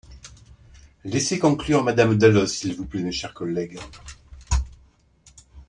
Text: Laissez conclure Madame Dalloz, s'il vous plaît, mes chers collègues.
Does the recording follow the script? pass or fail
pass